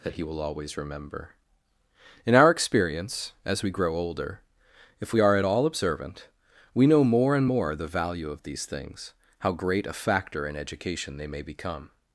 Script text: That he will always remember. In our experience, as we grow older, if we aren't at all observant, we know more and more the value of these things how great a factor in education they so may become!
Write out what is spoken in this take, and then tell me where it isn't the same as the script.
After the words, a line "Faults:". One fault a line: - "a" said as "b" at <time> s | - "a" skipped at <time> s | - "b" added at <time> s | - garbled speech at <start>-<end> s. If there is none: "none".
That he will always remember. In our experience, as we grow older, if we are at all observant, we know more and more the value of these things how great a factor in education they may become!
Faults:
- "aren't" said as "are" at 5.2 s
- "so" skipped at 11.3 s